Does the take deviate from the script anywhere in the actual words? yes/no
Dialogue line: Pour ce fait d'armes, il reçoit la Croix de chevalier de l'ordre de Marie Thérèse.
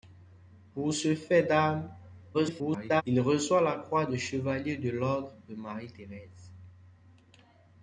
yes